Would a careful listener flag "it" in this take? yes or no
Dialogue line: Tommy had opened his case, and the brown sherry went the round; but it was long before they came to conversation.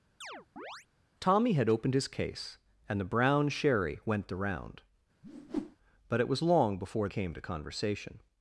no